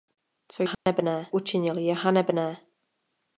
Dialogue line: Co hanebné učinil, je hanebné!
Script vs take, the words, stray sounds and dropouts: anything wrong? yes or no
yes